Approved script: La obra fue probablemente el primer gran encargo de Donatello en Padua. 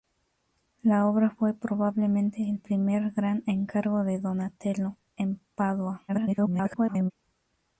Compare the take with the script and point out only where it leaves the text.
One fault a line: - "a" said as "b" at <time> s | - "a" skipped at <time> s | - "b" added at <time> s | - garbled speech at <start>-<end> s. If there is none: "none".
- garbled speech at 6.1-7.1 s